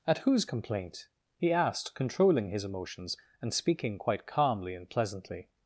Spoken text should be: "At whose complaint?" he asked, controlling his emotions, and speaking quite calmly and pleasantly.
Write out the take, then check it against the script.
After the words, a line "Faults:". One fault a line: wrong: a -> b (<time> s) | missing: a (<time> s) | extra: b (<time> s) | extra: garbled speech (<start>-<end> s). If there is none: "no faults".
"At whose complaint?" he asked, controlling his emotions, and speaking quite calmly and pleasantly.
Faults:
no faults